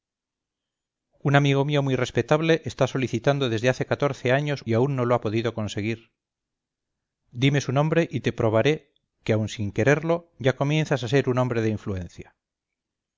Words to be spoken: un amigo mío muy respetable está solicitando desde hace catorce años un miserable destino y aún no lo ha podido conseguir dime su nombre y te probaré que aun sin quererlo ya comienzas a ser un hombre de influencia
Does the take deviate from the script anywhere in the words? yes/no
yes